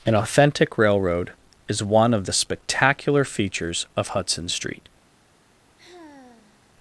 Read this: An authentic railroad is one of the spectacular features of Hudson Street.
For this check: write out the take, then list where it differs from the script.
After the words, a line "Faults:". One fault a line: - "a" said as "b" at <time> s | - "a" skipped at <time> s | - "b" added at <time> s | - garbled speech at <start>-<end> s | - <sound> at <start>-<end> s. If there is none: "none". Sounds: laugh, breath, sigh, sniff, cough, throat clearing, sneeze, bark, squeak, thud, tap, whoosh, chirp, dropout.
An authentic railroad is one of the spectacular features of Hudson Street.
Faults:
- sigh at 5.8-6.7 s